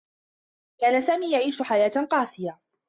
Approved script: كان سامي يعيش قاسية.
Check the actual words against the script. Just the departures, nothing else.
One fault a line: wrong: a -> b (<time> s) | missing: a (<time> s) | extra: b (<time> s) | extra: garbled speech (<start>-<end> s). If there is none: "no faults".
extra: حياة (1.6 s)